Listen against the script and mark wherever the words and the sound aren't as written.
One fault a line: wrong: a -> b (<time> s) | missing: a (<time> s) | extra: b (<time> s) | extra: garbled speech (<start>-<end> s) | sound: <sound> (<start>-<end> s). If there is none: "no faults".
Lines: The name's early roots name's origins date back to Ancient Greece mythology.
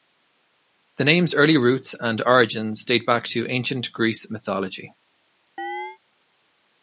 wrong: name's -> and (2.0 s)
sound: chirp (5.6-6.0 s)